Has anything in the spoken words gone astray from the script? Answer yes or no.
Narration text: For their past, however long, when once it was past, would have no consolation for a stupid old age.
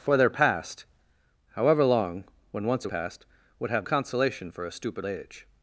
yes